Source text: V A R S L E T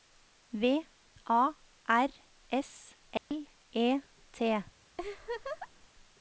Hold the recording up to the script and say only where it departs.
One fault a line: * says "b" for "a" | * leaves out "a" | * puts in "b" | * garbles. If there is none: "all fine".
all fine